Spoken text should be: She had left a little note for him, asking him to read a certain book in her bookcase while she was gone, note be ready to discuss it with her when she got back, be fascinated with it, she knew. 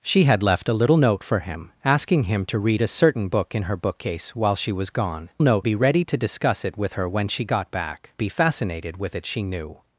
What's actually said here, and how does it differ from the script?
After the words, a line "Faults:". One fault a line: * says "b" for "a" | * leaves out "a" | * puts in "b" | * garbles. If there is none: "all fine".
She had left a little note for him, asking him to read a certain book in her bookcase while she was gone, note be ready to discuss it with her when she got back, be fascinated with it, she knew.
Faults:
all fine